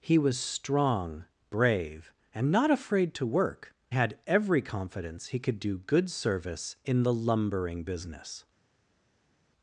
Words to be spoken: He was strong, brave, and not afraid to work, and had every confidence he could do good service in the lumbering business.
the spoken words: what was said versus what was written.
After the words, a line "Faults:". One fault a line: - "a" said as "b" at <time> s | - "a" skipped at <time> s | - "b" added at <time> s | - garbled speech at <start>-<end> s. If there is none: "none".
He was strong, brave, and not afraid to work, had every confidence he could do good service in the lumbering business.
Faults:
- "and" skipped at 3.7 s